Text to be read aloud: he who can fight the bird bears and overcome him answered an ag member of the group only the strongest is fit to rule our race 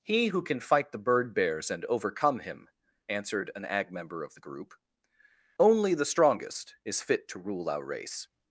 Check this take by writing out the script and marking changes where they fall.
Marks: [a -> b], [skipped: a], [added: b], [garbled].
he who can fight the bird bears and overcome him answered an ag member of the group only the strongest is fit to rule our race